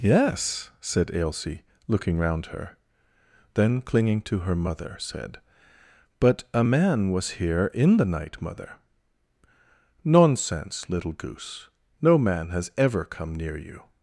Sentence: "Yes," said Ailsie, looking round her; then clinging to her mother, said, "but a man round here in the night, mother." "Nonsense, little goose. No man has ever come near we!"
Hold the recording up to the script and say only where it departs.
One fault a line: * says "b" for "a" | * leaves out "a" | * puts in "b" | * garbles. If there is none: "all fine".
* says "was" for "round"
* says "you" for "we"